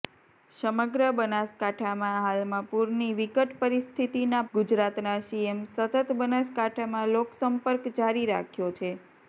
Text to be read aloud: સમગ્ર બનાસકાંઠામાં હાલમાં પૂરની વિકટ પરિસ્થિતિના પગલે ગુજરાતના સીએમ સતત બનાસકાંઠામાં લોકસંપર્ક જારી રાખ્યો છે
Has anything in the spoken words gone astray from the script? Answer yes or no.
yes